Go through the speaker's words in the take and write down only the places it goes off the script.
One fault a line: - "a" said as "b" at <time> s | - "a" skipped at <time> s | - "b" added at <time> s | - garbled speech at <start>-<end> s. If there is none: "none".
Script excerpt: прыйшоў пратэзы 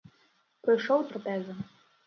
none